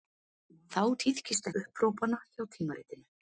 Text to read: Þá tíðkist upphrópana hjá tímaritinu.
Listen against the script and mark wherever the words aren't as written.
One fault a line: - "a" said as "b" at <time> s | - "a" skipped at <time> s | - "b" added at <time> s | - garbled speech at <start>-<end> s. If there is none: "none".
none